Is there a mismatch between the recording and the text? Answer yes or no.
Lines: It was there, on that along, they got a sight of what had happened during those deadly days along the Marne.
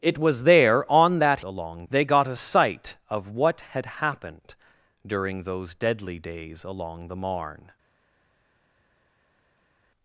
no